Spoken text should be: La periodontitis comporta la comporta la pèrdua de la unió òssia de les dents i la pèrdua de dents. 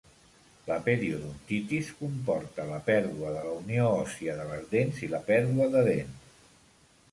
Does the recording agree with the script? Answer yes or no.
no